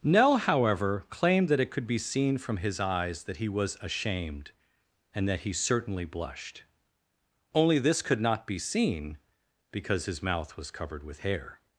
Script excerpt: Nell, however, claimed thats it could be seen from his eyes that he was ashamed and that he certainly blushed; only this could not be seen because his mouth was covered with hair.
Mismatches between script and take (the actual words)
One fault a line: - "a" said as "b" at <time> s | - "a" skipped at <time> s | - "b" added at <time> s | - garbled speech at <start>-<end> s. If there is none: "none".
- "thats" said as "that" at 1.5 s